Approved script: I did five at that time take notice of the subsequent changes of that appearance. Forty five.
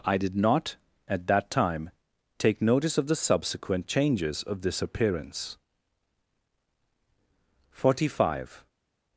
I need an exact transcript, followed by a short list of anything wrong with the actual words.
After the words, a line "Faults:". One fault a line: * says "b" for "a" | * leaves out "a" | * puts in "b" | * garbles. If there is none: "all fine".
I did not at that time take notice of the subsequent changes of this appearance. Forty five.
Faults:
* says "not" for "five"
* says "this" for "that"